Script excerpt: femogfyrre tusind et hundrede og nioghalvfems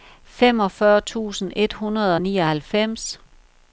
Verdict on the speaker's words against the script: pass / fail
pass